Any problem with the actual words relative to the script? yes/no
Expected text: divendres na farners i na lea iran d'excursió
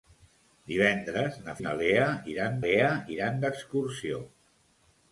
yes